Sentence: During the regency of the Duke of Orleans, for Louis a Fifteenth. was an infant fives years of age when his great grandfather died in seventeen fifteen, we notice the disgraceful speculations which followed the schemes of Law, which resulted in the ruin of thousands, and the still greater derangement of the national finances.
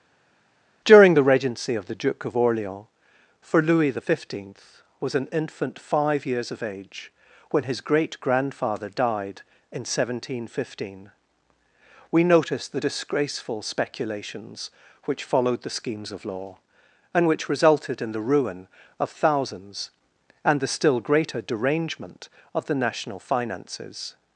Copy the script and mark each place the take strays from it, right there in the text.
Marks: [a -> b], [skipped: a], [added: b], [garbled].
During the regency of the Duke of Orleans, for Louis [a -> the] Fifteenth. was an infant [fives -> five] years of age when his great grandfather died in seventeen fifteen, we notice the disgraceful speculations which followed the schemes of Law, [added: and] which resulted in the ruin of thousands, and the still greater derangement of the national finances.